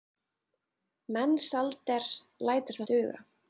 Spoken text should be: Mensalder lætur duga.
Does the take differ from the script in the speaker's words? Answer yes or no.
no